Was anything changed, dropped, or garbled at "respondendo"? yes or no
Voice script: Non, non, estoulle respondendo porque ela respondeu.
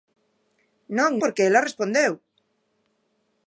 yes